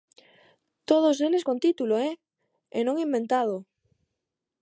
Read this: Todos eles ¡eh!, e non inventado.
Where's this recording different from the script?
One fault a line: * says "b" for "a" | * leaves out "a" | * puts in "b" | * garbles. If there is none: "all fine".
* puts in "con título"